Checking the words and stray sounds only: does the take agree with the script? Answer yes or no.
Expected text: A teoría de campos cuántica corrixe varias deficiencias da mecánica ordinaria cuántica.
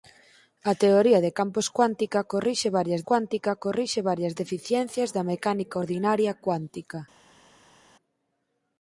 no